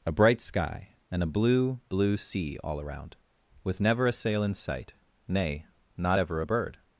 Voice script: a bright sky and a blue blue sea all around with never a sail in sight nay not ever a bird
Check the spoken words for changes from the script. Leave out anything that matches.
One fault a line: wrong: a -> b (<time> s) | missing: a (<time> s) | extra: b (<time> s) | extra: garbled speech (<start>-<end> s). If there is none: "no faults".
no faults